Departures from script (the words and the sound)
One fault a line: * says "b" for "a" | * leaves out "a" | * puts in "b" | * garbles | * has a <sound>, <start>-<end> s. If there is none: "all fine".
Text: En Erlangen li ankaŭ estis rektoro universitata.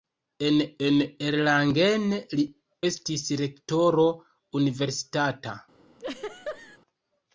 * puts in "en"
* leaves out "ankaŭ"
* has a laugh, 6.0-6.8 s